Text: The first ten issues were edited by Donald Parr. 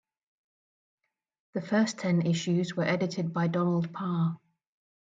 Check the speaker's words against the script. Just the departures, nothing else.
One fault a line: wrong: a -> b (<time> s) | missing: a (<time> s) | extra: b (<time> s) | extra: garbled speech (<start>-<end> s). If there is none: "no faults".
no faults